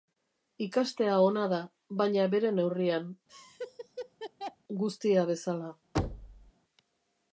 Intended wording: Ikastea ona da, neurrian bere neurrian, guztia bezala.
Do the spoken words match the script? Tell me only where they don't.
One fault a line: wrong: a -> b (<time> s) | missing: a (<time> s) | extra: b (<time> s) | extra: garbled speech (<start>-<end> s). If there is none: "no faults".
wrong: neurrian -> baina (2.0 s)